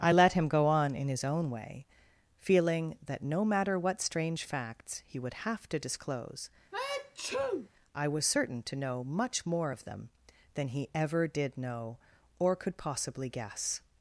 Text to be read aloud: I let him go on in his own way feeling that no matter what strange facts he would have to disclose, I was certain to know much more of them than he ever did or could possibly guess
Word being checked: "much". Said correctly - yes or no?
yes